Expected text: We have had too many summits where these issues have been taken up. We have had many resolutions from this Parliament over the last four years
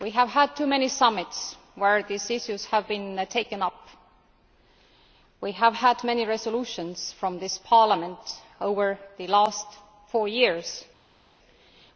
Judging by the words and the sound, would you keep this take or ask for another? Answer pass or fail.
pass